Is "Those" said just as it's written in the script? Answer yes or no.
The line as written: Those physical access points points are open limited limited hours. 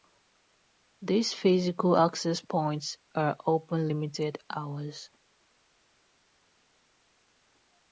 no